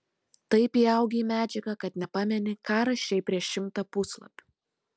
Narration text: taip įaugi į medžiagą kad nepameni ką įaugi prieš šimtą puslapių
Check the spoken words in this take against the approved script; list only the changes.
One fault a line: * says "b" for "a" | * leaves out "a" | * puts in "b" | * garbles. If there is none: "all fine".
* says "rašei" for "įaugi"